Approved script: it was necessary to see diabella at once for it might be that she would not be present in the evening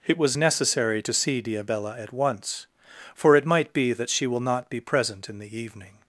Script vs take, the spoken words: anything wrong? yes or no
yes